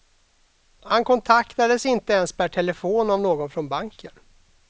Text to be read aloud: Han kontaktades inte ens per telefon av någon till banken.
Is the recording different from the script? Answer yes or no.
yes